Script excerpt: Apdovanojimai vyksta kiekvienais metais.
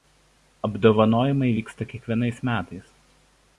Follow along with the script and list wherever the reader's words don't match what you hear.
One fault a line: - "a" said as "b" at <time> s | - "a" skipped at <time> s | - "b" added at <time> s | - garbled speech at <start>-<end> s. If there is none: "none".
none